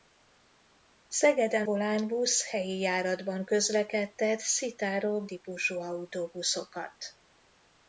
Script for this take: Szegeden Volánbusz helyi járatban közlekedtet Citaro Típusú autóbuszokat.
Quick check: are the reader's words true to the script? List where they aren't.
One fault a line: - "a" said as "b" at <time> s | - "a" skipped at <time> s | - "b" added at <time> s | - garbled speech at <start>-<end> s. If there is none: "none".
none